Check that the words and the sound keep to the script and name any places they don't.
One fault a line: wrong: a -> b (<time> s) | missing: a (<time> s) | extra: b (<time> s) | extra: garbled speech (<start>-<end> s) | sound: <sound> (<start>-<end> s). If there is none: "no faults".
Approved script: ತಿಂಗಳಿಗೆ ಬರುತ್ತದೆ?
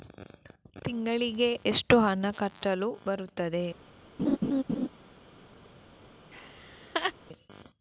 extra: ಎಷ್ಟು ಹಣ ಕಟ್ಟಲು (1.7 s)
sound: laugh (4.2-4.9 s)
sound: laugh (6.3-7.1 s)